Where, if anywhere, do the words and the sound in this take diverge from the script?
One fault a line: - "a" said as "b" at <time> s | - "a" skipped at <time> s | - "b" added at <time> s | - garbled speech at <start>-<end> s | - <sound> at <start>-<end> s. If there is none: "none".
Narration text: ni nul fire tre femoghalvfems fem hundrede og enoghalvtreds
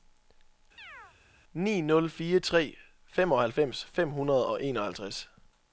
- chirp at 0.8-1.2 s